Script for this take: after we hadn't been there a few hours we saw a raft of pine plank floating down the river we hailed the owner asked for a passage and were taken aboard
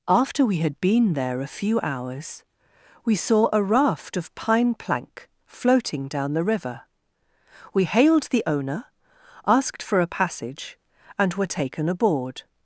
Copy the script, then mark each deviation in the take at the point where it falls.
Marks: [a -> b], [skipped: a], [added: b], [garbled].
after we [hadn't -> had] been there a few hours we saw a raft of pine plank floating down the river we hailed the owner asked for a passage and were taken aboard